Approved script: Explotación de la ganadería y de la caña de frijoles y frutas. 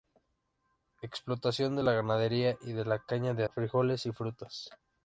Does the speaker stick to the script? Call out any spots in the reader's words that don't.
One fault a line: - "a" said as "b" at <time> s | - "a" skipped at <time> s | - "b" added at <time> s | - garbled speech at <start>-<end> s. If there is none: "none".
none